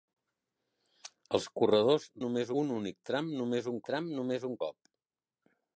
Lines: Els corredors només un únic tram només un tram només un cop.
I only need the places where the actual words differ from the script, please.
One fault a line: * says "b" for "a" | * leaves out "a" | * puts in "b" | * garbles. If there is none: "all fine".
all fine